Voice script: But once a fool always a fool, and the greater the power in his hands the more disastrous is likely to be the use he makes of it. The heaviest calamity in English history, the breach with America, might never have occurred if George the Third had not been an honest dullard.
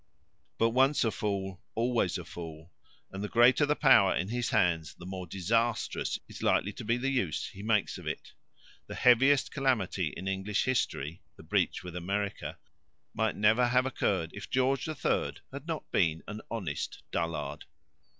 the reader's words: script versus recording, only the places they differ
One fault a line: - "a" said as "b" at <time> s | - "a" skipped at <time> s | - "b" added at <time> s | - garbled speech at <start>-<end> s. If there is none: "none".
none